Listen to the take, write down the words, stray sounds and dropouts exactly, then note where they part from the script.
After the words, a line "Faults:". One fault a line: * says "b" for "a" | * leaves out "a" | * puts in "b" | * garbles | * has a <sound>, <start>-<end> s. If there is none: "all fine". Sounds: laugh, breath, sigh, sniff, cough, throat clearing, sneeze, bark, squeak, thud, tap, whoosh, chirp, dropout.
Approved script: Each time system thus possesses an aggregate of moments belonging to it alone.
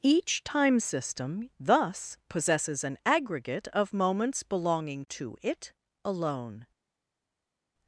Each time system thus possesses an aggregate of moments belonging to it alone.
Faults:
all fine